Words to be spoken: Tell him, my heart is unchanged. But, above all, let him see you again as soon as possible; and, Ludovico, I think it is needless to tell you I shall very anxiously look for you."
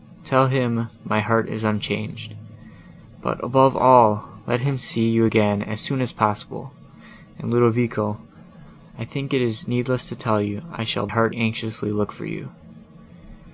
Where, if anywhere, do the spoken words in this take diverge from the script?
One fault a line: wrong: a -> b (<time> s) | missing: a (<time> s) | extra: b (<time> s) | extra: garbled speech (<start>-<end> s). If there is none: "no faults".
wrong: very -> heart (11.1 s)